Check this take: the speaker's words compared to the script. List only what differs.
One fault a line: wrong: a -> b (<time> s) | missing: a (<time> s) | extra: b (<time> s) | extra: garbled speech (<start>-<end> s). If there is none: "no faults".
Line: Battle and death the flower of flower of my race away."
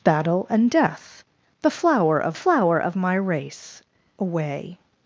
no faults